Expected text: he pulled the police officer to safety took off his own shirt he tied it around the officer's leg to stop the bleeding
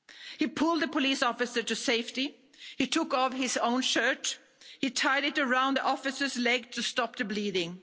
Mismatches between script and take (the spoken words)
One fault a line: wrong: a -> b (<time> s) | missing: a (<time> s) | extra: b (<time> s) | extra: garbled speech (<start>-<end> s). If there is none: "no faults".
extra: he (2.8 s)